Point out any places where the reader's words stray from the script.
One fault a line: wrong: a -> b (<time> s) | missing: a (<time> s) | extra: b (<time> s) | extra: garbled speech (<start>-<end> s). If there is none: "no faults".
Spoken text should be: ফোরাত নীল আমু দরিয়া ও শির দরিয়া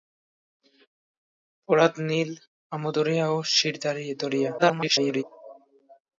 extra: garbled speech (4.6-5.2 s)